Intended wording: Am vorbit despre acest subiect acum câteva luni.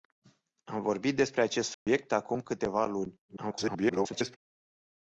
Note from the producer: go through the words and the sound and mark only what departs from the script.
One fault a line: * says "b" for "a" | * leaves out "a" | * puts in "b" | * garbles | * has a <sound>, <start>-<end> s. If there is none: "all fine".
* has a dropout, 1.7-1.9 s
* garbles